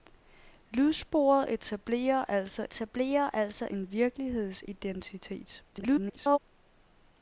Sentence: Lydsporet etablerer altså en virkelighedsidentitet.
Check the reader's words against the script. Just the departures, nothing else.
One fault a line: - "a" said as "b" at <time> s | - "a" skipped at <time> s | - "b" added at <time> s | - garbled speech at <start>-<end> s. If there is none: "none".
- "etablerer altså" added at 2.6 s
- garbled speech at 5.7-6.4 s